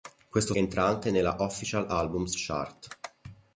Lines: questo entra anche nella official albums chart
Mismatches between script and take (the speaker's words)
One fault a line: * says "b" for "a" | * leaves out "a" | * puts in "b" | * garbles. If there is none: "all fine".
all fine